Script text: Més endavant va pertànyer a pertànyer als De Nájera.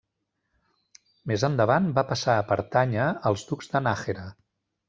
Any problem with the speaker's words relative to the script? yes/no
yes